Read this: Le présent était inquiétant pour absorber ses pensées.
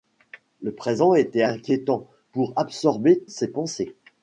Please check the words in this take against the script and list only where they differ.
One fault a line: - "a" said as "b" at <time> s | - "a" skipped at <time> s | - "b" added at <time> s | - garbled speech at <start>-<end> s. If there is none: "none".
none